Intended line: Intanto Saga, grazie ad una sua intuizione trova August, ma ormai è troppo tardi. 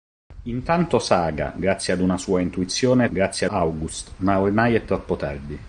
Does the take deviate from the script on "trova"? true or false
true